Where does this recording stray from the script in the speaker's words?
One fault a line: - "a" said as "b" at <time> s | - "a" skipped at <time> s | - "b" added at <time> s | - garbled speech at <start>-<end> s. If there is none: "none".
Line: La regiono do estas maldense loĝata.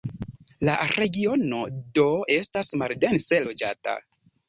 none